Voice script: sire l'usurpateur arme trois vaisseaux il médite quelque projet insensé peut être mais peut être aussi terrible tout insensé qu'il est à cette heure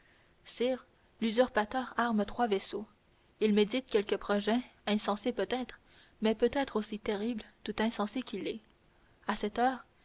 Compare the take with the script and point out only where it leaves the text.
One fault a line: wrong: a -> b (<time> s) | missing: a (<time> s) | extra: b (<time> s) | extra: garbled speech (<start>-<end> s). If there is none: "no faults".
no faults